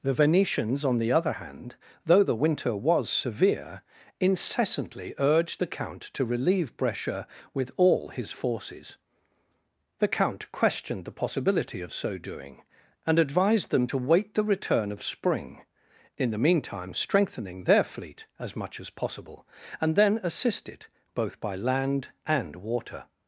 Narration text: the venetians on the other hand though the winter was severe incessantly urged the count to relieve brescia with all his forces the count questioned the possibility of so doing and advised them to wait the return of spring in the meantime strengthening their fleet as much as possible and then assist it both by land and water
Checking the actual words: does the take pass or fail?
pass